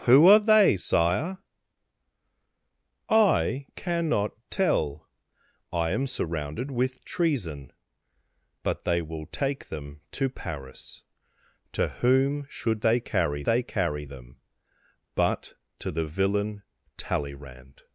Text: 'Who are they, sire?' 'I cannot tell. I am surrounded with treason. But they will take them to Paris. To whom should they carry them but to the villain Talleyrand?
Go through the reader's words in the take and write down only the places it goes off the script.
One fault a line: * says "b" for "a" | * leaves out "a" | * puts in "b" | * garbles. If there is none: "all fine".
* puts in "they carry"